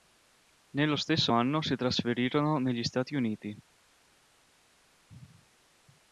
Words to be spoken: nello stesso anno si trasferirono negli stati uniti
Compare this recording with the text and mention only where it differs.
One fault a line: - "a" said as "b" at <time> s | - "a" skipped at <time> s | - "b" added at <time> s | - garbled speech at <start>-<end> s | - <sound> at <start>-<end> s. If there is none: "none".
none